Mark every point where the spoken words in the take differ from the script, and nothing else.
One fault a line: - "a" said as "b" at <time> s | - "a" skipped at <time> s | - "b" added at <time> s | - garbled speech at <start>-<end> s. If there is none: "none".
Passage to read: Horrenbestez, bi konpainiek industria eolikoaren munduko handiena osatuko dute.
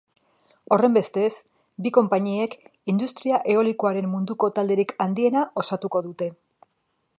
- "talderik" added at 4.6 s